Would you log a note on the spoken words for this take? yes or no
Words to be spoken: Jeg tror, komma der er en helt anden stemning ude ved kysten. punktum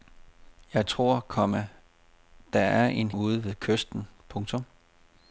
yes